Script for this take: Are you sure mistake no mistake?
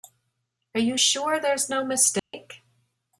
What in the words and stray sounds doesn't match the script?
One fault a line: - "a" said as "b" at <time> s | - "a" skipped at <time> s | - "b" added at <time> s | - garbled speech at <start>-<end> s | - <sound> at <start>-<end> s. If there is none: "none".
- "mistake" said as "there's" at 1.4 s
- dropout at 2.2-2.3 s